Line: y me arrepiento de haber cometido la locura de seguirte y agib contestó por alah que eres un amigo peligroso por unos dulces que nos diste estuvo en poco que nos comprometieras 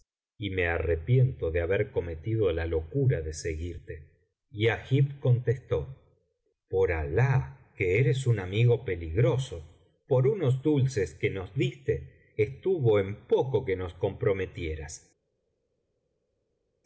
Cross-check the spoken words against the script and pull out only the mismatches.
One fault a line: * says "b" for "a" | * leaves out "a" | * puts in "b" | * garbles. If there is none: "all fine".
all fine